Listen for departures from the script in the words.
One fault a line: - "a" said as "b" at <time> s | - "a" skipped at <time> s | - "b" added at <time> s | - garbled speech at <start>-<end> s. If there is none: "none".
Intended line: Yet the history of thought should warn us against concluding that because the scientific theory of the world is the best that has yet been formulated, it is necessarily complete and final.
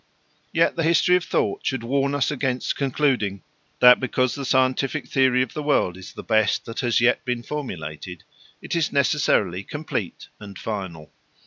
none